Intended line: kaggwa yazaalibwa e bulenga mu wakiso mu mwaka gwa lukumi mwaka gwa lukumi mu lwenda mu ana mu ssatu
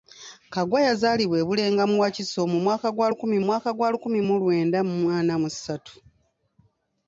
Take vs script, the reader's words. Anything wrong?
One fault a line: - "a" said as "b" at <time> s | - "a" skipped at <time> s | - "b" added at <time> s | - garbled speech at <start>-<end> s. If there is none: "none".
none